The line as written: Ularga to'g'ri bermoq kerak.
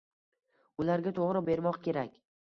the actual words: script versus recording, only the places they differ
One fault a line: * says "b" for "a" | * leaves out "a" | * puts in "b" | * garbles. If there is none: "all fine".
all fine